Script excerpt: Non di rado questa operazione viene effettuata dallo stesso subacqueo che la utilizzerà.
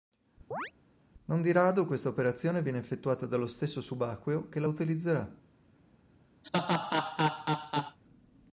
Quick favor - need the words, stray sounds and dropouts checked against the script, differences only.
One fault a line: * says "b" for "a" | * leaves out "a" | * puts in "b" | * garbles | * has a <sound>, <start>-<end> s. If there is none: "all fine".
* has a chirp, 0.5-0.7 s
* has a laugh, 6.4-8.0 s